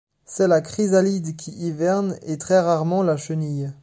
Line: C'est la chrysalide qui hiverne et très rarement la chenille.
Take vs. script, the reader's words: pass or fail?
pass